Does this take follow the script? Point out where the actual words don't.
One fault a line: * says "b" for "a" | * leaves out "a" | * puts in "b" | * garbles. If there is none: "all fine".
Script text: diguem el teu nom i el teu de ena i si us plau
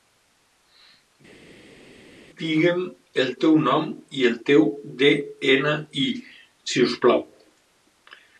all fine